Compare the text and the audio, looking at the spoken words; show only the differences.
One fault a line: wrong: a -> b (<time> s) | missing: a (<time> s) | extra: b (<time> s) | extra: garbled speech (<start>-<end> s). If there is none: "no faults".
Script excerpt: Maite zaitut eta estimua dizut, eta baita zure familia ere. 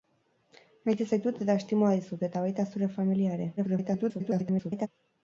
extra: garbled speech (3.6-4.9 s)